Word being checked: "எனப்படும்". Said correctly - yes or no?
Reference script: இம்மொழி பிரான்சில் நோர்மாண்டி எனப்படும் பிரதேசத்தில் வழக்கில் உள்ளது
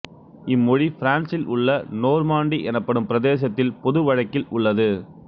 yes